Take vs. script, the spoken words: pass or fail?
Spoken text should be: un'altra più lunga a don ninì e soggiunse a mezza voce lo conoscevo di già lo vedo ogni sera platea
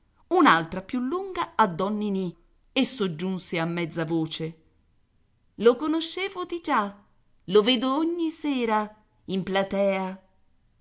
fail